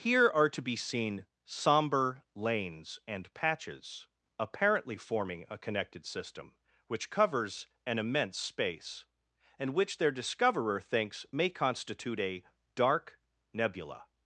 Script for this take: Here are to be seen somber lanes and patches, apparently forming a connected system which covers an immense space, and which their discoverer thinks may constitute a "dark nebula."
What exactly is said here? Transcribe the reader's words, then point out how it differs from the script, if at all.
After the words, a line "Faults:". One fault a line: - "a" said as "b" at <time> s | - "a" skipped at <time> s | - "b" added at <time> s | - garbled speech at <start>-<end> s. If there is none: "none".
Here are to be seen somber lanes and patches, apparently forming a connected system which covers an immense space, and which their discoverer thinks may constitute a "dark nebula."
Faults:
none